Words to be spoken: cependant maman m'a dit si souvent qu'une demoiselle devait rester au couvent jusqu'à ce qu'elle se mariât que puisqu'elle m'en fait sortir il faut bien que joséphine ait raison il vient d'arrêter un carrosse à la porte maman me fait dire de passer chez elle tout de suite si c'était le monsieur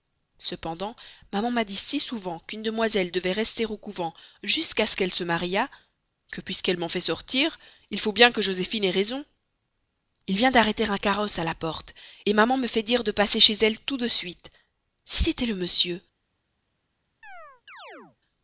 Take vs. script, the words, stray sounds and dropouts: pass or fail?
fail